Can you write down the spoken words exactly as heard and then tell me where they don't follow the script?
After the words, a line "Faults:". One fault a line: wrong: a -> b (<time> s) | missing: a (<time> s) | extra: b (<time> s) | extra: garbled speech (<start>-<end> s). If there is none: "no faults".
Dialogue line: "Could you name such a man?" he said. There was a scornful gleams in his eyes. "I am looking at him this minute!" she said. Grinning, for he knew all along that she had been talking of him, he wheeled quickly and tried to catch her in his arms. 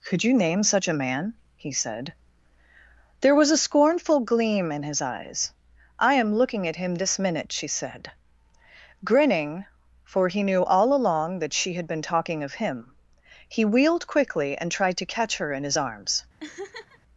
"Could you name such a man?" he said. There was a scornful gleam in his eyes. "I am looking at him this minute!" she said. Grinning, for he knew all along that she had been talking of him, he wheeled quickly and tried to catch her in his arms.
Faults:
wrong: gleams -> gleam (4.2 s)